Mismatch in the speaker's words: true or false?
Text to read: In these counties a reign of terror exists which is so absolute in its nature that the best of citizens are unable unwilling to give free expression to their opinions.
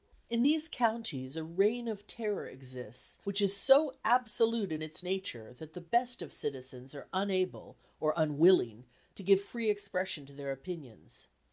true